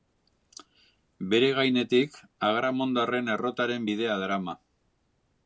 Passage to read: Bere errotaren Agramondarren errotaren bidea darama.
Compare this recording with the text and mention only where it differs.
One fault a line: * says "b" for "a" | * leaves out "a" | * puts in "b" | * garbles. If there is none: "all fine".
* says "gainetik" for "errotaren"